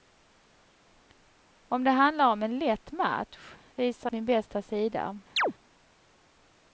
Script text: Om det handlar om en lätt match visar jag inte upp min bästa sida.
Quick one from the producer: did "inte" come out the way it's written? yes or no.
no